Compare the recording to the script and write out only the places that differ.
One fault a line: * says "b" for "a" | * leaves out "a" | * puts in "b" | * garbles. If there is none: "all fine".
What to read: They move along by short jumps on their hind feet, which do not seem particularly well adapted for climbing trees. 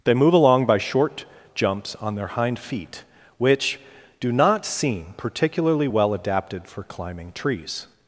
all fine